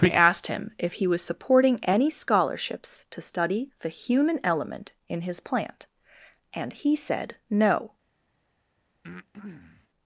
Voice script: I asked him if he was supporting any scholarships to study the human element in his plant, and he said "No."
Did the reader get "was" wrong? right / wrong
right